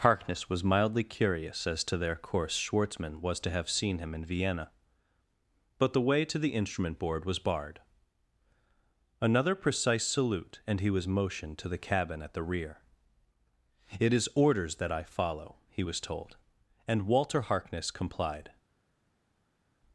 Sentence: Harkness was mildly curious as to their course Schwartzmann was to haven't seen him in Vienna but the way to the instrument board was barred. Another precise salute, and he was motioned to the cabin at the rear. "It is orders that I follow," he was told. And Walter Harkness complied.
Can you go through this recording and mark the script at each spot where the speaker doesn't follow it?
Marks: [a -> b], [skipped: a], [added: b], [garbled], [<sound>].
Harkness was mildly curious as to their course Schwartzmann was to [haven't -> have] seen him in Vienna but the way to the instrument board was barred. Another precise salute, and he was motioned to the cabin at the rear. "It is orders that I follow," he was told. And Walter Harkness complied.